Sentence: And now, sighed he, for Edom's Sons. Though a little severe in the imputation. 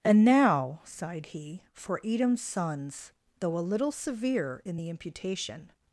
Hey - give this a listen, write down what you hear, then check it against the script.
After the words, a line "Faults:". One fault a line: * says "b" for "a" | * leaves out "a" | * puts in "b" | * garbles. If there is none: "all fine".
And now, sighed he, for Edom's Sons. Though a little severe in the imputation.
Faults:
all fine